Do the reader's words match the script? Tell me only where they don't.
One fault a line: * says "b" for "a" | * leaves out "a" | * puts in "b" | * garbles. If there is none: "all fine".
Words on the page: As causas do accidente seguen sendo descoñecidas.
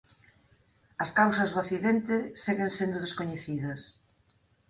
all fine